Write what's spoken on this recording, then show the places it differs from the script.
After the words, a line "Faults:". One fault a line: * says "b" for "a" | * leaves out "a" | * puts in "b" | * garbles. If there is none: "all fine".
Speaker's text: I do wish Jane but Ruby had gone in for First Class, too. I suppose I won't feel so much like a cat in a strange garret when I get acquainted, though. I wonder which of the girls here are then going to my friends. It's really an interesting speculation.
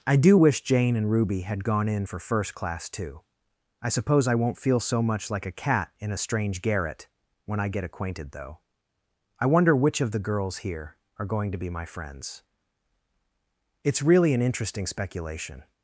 I do wish Jane and Ruby had gone in for First Class, too. I suppose I won't feel so much like a cat in a strange garret when I get acquainted, though. I wonder which of the girls here are going to be my friends. It's really an interesting speculation.
Faults:
* says "and" for "but"
* leaves out "then"
* puts in "be"